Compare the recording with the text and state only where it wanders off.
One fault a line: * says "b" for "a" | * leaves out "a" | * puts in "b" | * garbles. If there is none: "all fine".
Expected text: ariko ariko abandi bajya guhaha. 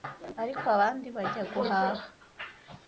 * leaves out "ariko"